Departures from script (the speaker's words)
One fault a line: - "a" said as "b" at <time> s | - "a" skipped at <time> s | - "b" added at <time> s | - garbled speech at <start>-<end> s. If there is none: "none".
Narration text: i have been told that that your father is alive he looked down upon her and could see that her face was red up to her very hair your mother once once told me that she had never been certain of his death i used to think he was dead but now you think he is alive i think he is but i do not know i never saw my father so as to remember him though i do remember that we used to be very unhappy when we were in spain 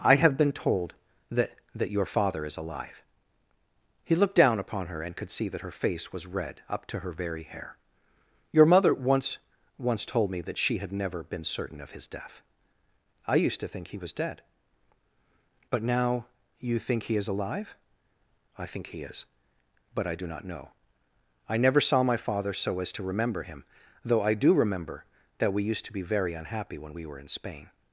none